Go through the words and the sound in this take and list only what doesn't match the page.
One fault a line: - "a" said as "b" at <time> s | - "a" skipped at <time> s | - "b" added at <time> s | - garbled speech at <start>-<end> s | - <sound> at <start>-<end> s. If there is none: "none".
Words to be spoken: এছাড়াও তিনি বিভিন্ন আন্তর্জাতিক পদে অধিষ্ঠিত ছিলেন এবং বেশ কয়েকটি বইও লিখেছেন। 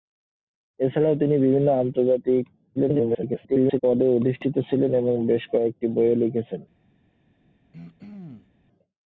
- garbled speech at 2.8-3.8 s
- throat clearing at 7.7-8.5 s